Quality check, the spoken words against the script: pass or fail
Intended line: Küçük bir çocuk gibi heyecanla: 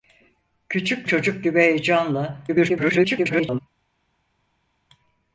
fail